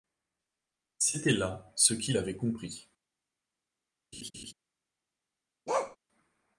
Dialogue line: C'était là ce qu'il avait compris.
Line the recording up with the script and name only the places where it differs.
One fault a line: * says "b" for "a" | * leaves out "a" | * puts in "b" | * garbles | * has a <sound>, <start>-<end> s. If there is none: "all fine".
* has a laugh, 4.1-4.5 s
* has a bark, 5.7-6.0 s